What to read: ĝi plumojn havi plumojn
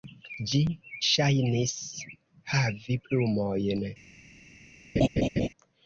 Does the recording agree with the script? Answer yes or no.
no